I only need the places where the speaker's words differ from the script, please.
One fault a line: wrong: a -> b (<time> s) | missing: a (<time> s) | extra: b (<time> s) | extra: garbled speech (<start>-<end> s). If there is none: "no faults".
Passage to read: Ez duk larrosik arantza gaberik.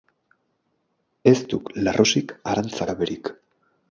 no faults